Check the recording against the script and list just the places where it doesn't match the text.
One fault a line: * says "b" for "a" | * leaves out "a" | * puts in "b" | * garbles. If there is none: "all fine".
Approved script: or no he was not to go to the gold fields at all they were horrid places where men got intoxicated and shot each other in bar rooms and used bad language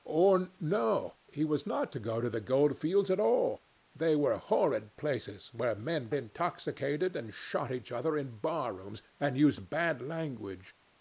* leaves out "got"